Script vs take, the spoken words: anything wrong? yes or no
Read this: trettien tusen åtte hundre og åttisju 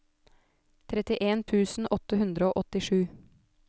no